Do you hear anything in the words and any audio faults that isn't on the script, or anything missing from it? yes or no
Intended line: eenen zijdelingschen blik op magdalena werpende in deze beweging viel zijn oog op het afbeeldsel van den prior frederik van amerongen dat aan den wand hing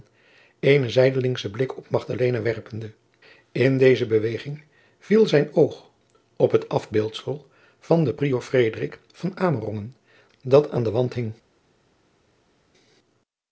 no